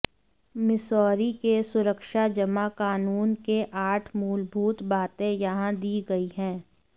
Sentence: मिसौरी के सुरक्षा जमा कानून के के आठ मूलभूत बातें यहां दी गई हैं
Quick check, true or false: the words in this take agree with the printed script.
false